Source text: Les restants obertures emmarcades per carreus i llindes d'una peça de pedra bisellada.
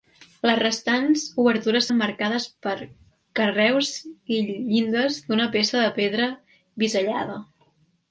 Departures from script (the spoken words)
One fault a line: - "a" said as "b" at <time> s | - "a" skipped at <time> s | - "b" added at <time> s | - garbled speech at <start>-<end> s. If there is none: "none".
none